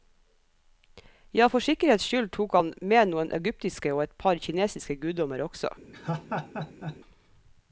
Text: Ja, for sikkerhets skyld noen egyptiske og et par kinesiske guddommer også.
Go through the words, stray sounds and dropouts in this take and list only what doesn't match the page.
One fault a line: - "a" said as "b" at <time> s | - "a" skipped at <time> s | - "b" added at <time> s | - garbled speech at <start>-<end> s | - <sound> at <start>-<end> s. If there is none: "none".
- "tok han med" added at 2.4 s
- laugh at 5.9-7.0 s